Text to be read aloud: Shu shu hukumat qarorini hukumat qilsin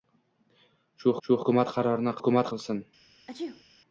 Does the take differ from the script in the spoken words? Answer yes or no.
no